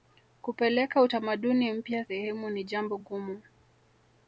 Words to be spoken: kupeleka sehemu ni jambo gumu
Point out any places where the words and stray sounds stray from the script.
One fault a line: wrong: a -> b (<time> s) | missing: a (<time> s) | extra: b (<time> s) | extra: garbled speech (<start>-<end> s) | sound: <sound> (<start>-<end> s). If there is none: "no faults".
extra: utamaduni mpya (1.0 s)